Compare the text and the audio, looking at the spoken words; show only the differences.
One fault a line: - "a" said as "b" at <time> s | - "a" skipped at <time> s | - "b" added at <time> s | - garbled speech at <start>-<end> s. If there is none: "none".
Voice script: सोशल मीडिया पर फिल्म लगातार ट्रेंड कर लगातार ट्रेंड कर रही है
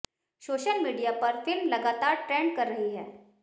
- "लगातार ट्रेंड कर" skipped at 2.7 s